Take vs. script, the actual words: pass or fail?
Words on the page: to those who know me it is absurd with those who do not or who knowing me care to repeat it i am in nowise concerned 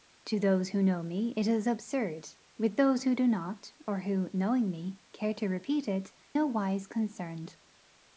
fail